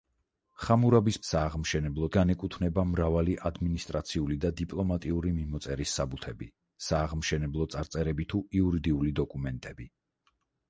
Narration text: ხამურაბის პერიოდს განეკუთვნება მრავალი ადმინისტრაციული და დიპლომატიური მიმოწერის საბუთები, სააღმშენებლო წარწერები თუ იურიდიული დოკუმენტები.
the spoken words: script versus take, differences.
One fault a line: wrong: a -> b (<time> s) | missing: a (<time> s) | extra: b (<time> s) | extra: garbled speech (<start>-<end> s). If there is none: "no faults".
wrong: პერიოდს -> სააღმშენებლო (1.3 s)